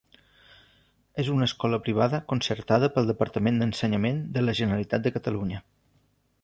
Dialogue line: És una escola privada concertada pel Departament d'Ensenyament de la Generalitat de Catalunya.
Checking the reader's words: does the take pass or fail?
pass